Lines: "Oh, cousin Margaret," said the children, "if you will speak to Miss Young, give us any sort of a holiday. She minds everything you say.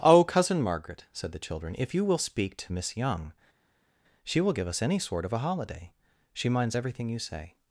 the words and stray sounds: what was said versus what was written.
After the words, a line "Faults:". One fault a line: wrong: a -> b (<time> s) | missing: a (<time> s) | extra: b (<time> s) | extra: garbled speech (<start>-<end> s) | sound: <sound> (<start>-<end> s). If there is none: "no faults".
"Oh, cousin Margaret," said the children, "if you will speak to Miss Young, she will give us any sort of a holiday. She minds everything you say.
Faults:
extra: she will (4.2 s)